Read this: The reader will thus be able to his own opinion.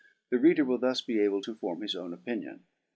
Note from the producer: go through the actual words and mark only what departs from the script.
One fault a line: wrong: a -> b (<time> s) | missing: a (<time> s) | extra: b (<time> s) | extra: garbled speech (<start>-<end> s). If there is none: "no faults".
extra: form (1.5 s)